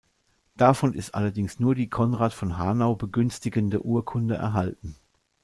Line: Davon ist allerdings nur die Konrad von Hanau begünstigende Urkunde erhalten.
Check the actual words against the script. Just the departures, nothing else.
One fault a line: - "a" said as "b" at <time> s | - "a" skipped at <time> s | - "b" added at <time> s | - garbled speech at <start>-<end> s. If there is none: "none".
none